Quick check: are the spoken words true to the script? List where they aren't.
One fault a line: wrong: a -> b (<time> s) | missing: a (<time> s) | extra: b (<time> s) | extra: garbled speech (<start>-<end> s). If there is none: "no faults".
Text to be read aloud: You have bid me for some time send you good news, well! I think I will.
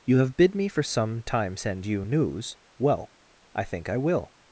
missing: good (2.0 s)